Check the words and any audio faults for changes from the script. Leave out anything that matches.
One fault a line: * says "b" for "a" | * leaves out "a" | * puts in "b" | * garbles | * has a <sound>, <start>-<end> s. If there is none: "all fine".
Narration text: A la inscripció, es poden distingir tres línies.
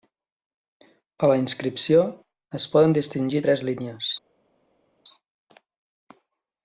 all fine